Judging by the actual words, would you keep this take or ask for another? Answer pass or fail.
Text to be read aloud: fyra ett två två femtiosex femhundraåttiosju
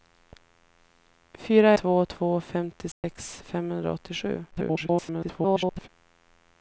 fail